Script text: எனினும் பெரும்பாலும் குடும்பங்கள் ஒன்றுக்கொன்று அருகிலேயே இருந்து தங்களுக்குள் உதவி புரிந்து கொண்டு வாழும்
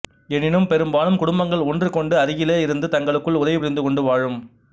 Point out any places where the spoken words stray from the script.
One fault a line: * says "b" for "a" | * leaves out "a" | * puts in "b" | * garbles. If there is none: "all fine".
all fine